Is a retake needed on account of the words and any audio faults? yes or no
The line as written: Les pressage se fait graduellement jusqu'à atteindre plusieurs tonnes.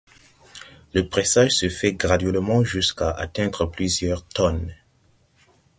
yes